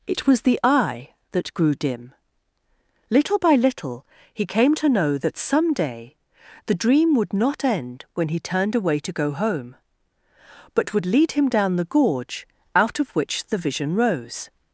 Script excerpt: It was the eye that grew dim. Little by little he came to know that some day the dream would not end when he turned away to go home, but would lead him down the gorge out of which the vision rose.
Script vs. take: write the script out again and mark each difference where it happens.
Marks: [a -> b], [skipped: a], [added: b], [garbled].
It was the eye that grew dim. Little by little he came to know that some day the dream would not end when he turned away to go home, but would lead him down the gorge out of which the vision rose.